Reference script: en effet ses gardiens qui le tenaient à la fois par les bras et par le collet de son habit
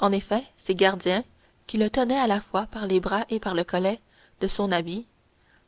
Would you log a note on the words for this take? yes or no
no